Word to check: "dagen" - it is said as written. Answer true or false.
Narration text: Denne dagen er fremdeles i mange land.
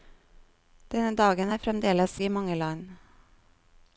true